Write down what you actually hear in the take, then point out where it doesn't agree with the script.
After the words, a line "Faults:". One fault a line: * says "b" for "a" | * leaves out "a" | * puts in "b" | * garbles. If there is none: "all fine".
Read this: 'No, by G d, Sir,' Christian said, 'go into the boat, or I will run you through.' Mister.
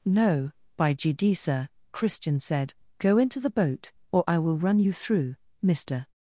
'No, by G d, Sir,' Christian said, 'go into the boat, or I will run you through.' Mister.
Faults:
all fine